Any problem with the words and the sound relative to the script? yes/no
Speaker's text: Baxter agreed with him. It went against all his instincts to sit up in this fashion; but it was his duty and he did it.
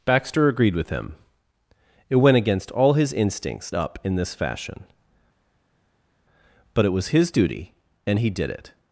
yes